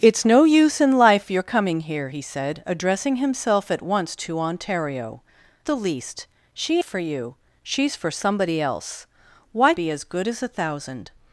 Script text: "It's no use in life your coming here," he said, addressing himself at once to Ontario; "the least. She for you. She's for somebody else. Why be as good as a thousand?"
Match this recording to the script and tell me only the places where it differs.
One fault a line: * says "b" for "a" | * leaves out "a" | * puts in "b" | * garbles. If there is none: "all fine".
all fine